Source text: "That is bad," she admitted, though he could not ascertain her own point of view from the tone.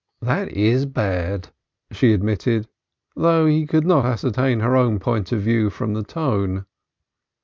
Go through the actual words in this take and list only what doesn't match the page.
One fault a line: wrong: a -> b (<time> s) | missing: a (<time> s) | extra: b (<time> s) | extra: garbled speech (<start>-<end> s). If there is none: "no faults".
no faults